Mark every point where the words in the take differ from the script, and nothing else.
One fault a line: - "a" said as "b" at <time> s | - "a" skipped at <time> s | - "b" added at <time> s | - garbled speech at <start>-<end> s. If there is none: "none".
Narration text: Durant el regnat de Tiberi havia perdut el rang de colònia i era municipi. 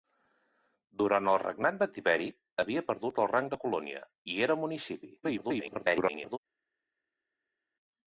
- garbled speech at 5.2-6.4 s